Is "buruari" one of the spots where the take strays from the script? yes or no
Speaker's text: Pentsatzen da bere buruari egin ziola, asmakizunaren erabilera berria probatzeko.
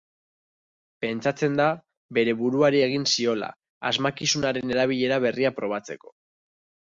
no